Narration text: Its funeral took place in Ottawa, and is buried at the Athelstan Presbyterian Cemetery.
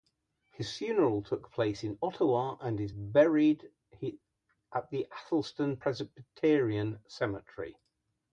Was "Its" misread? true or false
true